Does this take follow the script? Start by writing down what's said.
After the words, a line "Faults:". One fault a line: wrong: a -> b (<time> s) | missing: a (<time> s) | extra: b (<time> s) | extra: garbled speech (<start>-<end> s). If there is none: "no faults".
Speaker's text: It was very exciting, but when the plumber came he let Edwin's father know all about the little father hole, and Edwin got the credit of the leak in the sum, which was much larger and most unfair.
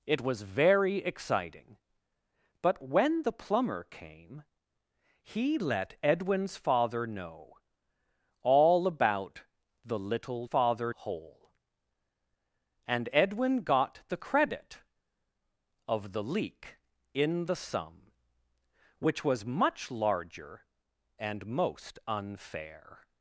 It was very exciting, but when the plumber came he let Edwin's father know all about the little father hole, and Edwin got the credit of the leak in the sum, which was much larger and most unfair.
Faults:
no faults